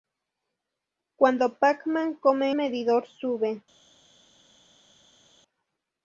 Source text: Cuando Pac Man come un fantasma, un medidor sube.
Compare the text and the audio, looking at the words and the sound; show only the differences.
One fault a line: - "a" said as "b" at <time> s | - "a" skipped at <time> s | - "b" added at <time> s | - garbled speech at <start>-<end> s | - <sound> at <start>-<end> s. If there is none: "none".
- "un fantasma un" skipped at 2.5 s